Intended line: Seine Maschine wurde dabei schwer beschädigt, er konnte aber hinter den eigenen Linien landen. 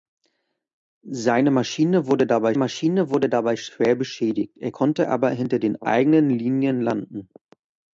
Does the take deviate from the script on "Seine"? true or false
false